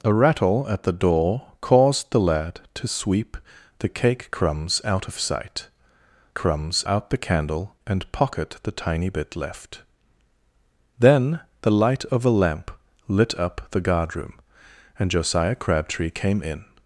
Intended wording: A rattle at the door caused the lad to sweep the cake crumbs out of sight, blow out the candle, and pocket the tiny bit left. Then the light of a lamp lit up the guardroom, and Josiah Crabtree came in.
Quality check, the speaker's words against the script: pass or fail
fail